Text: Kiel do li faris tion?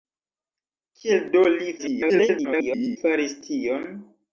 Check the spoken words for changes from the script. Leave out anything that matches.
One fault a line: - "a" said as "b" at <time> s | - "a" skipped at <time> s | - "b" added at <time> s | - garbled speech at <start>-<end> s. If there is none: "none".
- garbled speech at 1.8-3.0 s